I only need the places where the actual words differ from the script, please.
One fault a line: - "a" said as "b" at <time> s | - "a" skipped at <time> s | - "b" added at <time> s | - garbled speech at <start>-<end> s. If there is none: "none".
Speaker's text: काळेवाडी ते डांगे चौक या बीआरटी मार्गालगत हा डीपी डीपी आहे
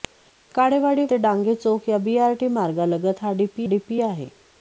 none